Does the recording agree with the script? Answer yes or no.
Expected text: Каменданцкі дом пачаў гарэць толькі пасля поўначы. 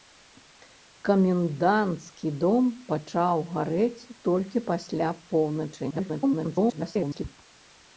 no